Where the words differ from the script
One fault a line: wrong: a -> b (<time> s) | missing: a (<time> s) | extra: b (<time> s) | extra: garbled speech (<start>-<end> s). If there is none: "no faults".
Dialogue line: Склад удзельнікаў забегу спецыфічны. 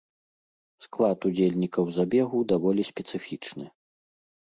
extra: даволі (2.6 s)